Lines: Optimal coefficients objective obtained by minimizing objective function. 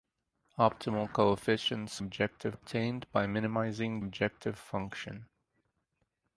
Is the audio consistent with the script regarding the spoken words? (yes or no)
yes